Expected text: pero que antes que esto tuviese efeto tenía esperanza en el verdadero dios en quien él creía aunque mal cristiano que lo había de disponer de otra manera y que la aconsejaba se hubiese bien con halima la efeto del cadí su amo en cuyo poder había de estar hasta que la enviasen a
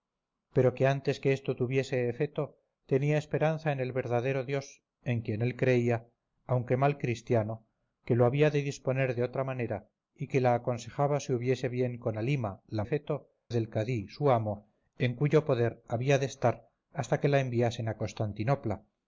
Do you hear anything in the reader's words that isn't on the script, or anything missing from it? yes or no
no